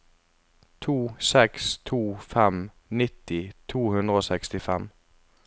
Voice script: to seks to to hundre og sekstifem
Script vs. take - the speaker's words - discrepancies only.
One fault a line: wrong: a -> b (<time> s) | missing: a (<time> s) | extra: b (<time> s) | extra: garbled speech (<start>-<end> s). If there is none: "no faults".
extra: fem nitti (2.2 s)